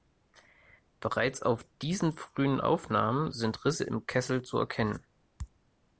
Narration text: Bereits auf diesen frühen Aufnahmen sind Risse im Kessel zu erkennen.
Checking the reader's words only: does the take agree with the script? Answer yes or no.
yes